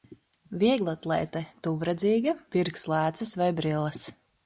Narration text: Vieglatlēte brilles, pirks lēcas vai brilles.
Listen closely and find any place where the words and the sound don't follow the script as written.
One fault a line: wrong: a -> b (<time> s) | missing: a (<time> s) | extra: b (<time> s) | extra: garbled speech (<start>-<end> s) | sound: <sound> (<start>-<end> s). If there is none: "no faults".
wrong: brilles -> tuvredzīga (1.7 s)